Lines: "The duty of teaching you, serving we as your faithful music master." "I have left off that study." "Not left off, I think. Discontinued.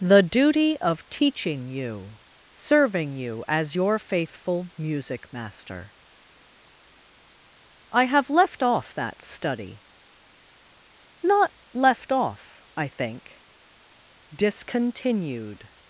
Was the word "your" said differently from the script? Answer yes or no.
no